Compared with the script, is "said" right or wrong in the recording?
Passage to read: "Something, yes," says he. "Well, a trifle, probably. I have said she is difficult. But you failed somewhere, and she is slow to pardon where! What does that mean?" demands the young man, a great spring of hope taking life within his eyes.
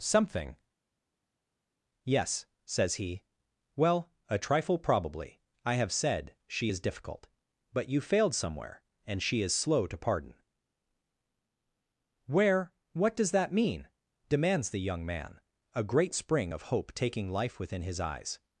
right